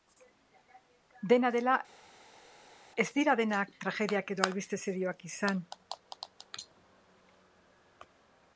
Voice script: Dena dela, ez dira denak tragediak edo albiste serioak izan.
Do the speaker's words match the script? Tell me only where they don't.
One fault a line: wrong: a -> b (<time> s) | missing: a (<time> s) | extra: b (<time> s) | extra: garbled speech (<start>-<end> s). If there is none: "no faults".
no faults